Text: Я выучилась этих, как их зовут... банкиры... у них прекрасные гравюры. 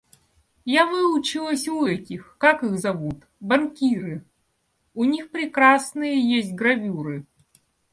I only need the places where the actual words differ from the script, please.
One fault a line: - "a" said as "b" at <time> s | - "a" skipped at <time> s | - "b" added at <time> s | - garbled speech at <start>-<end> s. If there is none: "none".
- "у" added at 1.7 s
- "есть" added at 6.2 s